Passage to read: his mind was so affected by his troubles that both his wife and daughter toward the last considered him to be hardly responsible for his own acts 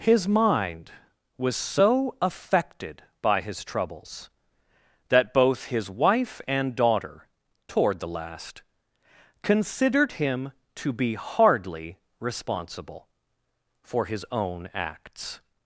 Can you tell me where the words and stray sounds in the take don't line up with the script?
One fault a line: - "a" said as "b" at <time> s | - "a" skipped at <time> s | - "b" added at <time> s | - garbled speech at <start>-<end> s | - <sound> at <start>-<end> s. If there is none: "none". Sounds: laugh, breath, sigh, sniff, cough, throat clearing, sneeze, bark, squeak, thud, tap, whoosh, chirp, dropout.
none